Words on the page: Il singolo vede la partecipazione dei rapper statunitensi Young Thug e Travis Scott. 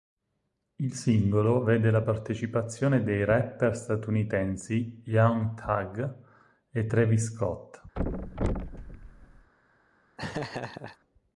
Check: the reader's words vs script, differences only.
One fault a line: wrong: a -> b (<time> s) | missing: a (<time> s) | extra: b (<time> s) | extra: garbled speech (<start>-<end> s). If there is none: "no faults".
no faults